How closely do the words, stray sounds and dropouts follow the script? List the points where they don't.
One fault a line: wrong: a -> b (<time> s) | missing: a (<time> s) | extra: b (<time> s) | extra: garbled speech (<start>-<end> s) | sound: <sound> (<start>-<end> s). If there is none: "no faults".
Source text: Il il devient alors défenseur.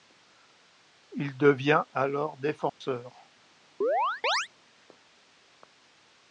missing: il (1.4 s)
sound: dropout (2.7-2.8 s)
sound: chirp (3.8-4.5 s)